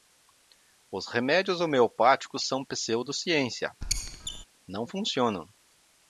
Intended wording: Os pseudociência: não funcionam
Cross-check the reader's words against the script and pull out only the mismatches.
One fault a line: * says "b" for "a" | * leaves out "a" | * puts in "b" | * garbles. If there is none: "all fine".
* puts in "remédios homeopáticos são"